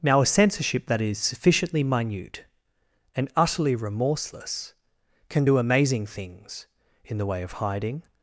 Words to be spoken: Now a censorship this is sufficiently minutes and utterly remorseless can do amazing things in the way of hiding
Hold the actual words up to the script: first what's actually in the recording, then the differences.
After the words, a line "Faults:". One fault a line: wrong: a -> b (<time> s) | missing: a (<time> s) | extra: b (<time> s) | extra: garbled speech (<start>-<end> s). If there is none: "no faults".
Now a censorship that is sufficiently minute and utterly remorseless can do amazing things in the way of hiding
Faults:
wrong: this -> that (0.9 s)
wrong: minutes -> minute (1.8 s)